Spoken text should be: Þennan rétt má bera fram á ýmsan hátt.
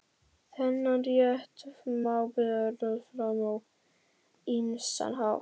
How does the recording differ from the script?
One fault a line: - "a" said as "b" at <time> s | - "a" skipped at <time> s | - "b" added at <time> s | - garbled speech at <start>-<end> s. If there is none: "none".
none